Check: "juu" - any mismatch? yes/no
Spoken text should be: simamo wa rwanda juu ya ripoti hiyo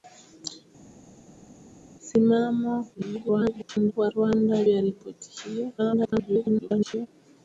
yes